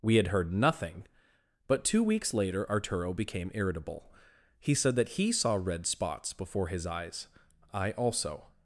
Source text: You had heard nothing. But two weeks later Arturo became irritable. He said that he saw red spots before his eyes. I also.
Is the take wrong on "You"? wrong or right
wrong